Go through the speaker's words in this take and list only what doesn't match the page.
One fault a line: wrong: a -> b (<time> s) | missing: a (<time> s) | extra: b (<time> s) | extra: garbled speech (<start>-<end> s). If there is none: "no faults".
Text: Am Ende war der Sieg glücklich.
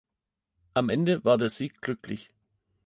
no faults